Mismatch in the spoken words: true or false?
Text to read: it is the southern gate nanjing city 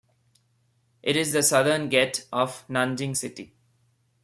true